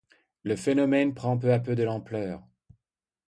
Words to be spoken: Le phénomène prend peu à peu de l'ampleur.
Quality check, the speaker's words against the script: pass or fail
pass